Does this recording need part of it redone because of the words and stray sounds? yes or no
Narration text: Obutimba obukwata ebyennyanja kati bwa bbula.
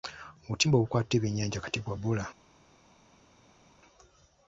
no